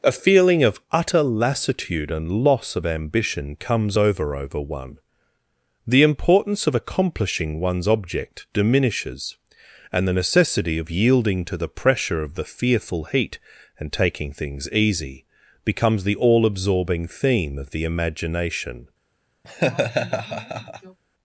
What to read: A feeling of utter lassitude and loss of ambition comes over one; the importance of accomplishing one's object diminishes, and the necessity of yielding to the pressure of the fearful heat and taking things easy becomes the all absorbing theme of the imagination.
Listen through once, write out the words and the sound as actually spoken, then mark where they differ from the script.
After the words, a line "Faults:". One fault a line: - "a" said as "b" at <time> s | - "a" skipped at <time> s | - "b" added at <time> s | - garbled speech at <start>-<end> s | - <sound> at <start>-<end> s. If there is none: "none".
A feeling of utter lassitude and loss of ambition comes over over one; the importance of accomplishing one's object diminishes, and the necessity of yielding to the pressure of the fearful heat and taking things easy becomes the all absorbing theme of the imagination.
Faults:
- "over" added at 4.3 s
- laugh at 19.4-21.0 s